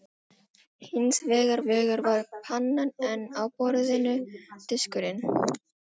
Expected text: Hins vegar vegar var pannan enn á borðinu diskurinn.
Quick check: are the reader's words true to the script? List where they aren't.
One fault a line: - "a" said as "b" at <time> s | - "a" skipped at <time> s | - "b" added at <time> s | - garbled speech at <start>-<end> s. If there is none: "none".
none